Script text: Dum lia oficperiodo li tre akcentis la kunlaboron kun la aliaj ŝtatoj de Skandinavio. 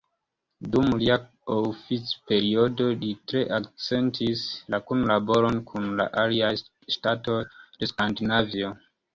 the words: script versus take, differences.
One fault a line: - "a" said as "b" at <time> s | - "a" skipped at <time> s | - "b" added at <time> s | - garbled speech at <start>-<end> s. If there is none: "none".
none